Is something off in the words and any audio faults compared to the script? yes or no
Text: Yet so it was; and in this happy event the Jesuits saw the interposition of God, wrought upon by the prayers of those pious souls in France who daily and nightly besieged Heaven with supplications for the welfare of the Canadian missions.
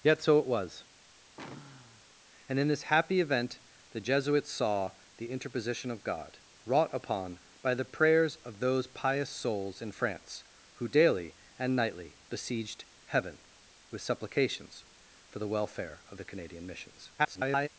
yes